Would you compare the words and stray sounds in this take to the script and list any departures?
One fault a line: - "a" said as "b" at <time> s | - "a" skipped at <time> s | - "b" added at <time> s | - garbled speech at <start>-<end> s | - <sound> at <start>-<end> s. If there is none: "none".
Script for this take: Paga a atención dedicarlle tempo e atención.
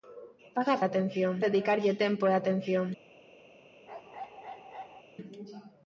- bark at 3.9-5.0 s